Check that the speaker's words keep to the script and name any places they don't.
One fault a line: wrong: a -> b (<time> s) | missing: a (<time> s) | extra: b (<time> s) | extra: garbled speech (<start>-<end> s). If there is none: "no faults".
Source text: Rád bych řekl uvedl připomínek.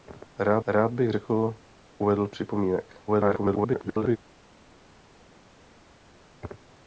extra: rád (0.7 s)
extra: garbled speech (3.1-4.2 s)